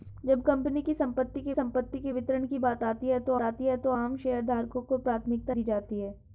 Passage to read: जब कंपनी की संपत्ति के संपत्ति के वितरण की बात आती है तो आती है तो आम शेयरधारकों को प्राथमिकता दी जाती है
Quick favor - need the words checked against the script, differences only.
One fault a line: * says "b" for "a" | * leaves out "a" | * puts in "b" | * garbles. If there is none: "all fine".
all fine